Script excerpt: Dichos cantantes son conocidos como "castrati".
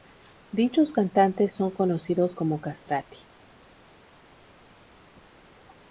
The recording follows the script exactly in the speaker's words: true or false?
true